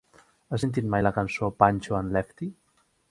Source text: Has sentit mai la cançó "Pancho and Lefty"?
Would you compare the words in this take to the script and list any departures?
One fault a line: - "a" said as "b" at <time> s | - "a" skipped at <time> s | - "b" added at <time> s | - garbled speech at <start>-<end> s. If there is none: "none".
none